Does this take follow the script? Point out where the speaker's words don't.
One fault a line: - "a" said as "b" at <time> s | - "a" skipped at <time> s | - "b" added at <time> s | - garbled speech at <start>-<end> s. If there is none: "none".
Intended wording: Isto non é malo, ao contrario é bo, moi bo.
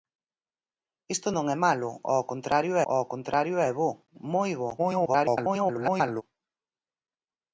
- "ao contrario" added at 2.9 s
- garbled speech at 4.8-6.2 s